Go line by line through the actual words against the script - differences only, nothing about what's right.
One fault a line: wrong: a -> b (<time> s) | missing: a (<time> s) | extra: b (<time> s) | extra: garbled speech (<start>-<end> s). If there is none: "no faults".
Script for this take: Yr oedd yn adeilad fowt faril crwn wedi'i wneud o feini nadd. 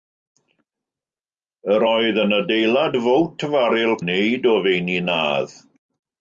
missing: crwn wedi'i (3.9 s)